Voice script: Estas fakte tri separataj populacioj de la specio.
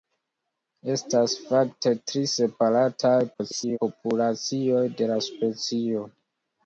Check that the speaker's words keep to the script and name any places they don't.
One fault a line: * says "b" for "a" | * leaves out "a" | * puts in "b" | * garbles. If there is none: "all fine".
* garbles